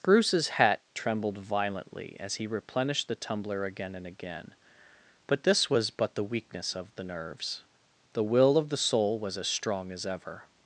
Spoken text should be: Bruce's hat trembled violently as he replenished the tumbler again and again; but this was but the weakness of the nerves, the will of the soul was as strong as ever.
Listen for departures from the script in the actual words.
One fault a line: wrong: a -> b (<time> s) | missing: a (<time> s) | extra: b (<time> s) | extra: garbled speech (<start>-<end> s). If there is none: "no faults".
no faults